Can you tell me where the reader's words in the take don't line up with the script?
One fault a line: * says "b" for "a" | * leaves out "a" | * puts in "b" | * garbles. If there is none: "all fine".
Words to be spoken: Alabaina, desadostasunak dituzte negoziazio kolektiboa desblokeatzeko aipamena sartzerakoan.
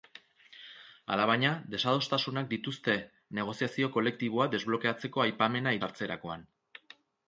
all fine